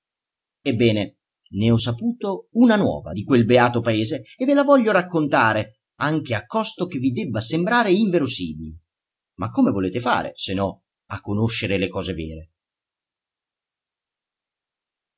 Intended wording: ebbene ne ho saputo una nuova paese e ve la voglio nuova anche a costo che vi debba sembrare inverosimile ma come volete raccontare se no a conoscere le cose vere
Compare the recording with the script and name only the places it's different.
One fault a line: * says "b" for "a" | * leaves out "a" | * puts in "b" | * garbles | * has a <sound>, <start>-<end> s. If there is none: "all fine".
* puts in "di quel beato"
* says "raccontare" for "nuova"
* says "fare" for "raccontare"